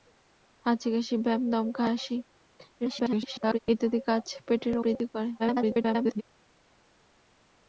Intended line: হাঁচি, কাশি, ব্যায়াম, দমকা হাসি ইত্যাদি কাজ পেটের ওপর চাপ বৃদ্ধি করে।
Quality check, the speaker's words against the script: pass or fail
fail